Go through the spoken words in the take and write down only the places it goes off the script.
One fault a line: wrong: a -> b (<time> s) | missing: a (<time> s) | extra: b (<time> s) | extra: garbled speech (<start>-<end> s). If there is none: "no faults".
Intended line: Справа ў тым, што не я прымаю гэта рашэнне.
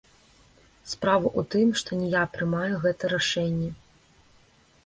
no faults